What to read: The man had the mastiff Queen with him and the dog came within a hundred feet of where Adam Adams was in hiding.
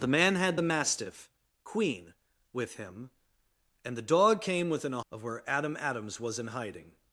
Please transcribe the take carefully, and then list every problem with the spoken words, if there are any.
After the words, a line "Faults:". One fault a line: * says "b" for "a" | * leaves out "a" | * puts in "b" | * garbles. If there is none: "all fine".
The man had the mastiff Queen with him and the dog came within a of where Adam Adams was in hiding.
Faults:
* leaves out "hundred feet"